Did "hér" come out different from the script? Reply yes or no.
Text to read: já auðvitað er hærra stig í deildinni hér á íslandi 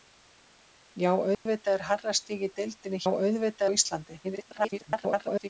yes